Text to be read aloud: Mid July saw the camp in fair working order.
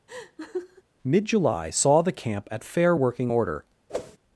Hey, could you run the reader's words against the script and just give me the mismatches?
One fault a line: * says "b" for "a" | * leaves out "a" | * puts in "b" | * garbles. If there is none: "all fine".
* says "at" for "in"